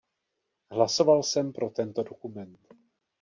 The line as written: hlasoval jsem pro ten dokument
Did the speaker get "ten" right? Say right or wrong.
wrong